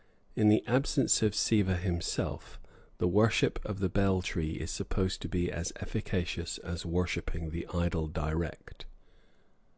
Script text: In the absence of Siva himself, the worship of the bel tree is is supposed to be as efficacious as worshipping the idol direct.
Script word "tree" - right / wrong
right